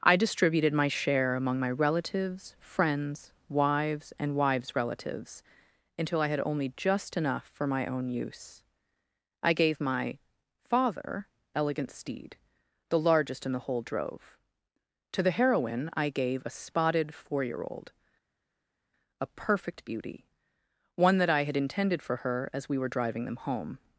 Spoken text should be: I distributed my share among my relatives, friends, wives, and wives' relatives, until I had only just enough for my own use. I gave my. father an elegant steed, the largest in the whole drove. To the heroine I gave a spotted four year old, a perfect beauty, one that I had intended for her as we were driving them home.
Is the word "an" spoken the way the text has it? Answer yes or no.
no